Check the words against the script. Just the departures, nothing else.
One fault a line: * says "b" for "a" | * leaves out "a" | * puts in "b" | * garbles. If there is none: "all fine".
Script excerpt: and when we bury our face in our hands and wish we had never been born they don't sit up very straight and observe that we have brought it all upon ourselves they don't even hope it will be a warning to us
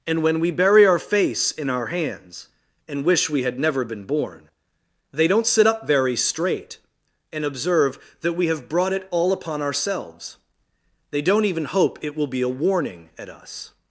* says "at" for "to"